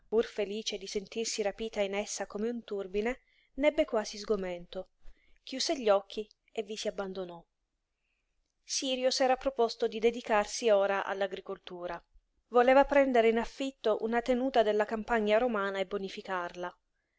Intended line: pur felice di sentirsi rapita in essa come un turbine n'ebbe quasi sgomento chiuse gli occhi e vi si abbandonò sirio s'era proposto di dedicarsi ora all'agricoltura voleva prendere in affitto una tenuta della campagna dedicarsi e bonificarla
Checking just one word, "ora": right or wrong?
right